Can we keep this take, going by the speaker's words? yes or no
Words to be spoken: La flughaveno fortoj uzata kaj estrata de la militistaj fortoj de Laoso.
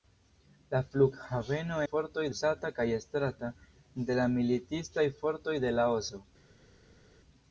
yes